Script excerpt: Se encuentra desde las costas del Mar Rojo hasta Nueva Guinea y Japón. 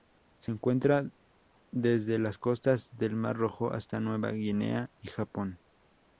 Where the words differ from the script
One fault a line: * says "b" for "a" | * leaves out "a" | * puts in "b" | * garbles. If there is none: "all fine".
all fine